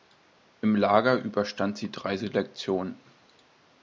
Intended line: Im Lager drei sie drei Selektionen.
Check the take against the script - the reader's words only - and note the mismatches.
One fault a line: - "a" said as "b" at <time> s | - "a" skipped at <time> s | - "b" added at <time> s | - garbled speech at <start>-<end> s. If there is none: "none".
- "drei" said as "überstand" at 1.2 s